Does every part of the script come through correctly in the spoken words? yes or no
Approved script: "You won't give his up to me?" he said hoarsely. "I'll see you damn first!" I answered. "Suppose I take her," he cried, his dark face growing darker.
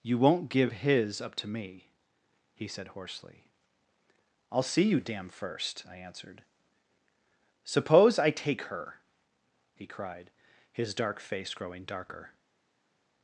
yes